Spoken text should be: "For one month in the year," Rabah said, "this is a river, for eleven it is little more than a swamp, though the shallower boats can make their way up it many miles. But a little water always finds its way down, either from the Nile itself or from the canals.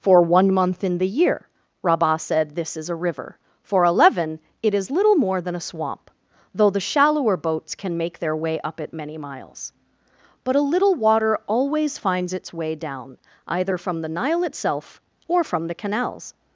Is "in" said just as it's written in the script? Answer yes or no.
yes